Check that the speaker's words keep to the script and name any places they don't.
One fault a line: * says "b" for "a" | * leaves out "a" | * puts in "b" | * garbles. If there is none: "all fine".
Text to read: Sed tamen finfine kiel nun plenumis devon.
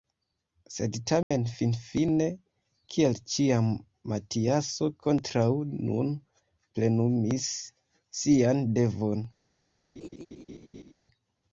* puts in "ĉiam Matiaso kontraŭ"
* puts in "sian"